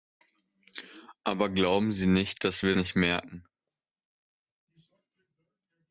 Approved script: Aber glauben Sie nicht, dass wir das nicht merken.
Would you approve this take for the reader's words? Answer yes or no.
no